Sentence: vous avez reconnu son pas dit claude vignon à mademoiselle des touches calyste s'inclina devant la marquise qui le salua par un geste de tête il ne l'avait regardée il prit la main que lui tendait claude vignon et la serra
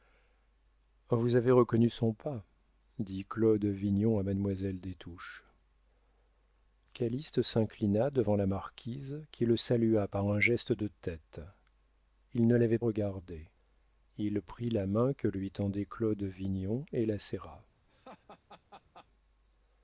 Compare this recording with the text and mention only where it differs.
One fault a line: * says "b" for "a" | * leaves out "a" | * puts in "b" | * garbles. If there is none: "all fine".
all fine